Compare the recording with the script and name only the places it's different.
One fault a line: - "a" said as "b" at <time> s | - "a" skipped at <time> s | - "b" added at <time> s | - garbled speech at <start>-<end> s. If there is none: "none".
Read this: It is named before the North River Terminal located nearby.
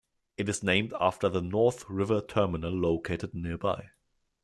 - "before" said as "after" at 1.0 s